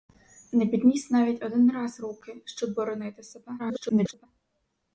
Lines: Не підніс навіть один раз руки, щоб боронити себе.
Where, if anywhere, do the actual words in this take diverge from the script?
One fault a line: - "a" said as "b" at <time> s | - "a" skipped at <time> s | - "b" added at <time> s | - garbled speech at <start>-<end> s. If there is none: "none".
- garbled speech at 3.6-4.3 s